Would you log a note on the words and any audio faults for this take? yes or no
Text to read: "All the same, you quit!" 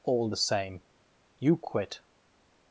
no